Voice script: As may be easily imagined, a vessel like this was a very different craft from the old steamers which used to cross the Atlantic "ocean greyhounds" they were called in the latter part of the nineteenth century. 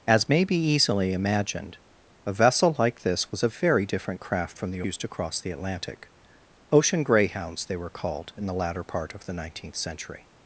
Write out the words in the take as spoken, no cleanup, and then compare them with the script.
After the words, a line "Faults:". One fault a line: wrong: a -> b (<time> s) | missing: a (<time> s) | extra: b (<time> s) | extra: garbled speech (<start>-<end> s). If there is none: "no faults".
As may be easily imagined, a vessel like this was a very different craft from the used to cross the Atlantic "ocean greyhounds" they were called in the latter part of the nineteenth century.
Faults:
missing: old steamers which (4.8 s)